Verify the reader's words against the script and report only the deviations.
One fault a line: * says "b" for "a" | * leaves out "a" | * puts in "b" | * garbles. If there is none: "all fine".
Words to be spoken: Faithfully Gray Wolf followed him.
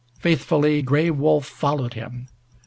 all fine